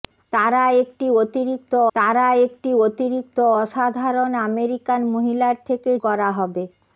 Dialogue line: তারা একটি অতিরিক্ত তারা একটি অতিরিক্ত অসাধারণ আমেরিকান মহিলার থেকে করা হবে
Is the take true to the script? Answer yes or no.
yes